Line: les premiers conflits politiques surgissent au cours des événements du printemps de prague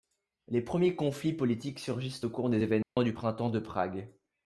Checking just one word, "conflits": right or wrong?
right